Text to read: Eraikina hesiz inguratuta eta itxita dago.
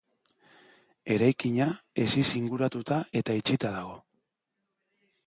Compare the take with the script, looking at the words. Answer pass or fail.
pass